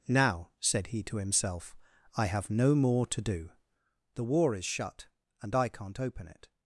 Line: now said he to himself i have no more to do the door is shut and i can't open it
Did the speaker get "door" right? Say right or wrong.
wrong